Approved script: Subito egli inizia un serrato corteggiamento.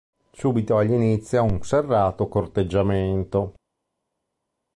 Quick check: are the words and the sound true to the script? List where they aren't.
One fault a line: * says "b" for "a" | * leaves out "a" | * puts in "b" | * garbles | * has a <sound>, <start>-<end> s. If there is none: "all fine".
all fine